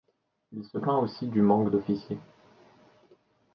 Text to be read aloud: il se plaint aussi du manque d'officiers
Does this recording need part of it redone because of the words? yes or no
no